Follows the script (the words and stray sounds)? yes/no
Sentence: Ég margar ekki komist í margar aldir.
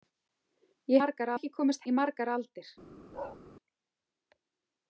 no